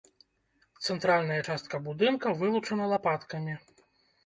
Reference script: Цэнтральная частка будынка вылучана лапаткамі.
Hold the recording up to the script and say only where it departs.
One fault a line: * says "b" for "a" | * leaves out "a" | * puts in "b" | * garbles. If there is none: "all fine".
all fine